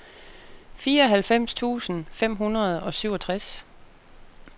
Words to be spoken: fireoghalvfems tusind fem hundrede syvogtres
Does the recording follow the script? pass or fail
fail